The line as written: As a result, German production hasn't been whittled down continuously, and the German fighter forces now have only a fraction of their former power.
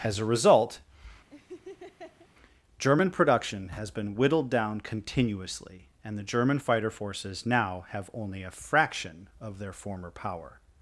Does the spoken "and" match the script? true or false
true